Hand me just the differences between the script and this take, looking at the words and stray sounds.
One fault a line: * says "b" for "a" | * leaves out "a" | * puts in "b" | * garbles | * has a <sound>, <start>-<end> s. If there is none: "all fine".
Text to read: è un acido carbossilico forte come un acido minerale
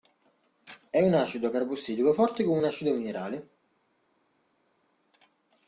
all fine